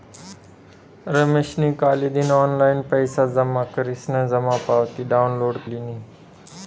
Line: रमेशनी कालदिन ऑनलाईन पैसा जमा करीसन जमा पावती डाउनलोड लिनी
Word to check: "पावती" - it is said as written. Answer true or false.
true